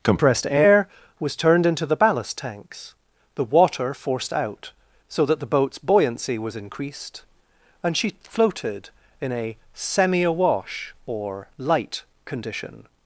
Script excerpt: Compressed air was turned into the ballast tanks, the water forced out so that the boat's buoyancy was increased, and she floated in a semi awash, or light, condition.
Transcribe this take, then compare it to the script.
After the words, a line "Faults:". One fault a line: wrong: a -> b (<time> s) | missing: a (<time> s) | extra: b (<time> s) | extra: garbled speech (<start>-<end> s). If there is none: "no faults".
Compressed air was turned into the ballast tanks, the water forced out so that the boat's buoyancy was increased, and she floated in a semi awash, or light, condition.
Faults:
no faults